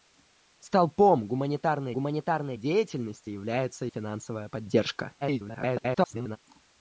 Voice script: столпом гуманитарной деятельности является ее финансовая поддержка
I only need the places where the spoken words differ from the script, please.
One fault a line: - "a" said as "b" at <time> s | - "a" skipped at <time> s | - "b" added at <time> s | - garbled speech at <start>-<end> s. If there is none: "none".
- "гуманитарной" added at 1.9 s
- "ее" skipped at 3.9 s
- garbled speech at 5.2-6.4 s